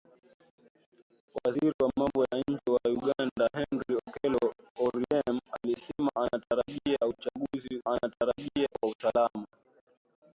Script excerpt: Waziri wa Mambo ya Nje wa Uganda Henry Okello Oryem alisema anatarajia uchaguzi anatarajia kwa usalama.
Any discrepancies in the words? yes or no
no